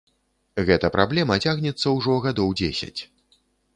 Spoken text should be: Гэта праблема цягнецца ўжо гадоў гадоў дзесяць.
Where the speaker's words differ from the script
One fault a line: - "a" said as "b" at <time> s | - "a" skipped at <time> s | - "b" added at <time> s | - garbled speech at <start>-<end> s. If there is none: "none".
- "гадоў" skipped at 2.6 s